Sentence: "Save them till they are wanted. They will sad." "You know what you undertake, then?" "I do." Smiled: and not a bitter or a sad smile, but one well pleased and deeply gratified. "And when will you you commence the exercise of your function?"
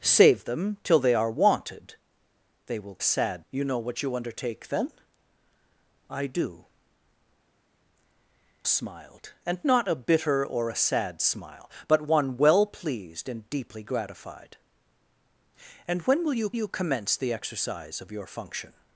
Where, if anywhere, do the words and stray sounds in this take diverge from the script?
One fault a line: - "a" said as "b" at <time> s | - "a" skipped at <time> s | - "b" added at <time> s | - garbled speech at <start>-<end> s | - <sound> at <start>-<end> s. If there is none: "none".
none